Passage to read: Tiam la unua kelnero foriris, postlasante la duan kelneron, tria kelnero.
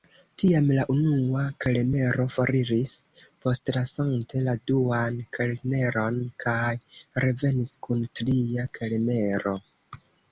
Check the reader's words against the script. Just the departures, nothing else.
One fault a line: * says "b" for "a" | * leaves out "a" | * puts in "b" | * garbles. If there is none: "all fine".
* puts in "kaj revenis kun"